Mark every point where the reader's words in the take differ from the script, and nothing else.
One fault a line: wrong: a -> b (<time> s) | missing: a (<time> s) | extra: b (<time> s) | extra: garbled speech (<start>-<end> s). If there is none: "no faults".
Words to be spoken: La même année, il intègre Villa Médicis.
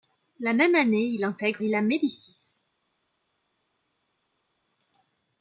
no faults